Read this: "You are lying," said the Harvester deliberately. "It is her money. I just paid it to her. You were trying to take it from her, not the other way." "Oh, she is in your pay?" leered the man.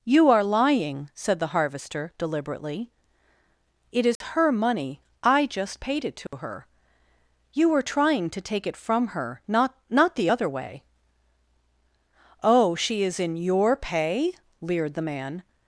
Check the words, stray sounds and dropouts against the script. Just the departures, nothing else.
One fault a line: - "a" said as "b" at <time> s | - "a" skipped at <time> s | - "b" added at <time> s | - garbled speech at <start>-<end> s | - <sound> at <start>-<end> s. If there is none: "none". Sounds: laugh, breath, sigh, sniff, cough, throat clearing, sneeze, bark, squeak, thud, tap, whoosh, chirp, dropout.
- dropout at 4.2-4.2 s
- dropout at 6.3-6.3 s
- "not" added at 9.9 s